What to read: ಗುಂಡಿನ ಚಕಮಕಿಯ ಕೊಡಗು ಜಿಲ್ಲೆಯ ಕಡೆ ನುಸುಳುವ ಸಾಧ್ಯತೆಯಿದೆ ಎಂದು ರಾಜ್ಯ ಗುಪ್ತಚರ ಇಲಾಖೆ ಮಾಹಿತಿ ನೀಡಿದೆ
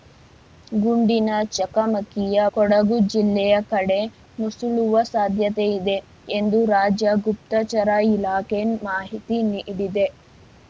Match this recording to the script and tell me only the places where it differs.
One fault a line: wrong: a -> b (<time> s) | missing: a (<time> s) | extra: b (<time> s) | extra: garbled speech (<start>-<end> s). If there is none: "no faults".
no faults